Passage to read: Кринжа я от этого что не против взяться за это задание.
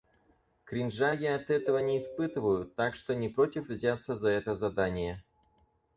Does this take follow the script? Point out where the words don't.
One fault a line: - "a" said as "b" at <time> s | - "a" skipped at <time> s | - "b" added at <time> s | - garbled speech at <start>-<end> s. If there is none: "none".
- "не испытываю так" added at 1.8 s